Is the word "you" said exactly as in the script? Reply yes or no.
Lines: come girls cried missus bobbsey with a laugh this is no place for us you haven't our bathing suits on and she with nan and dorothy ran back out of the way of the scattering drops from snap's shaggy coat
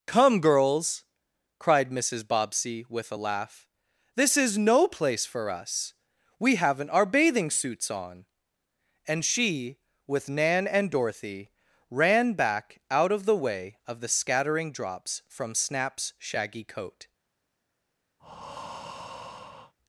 no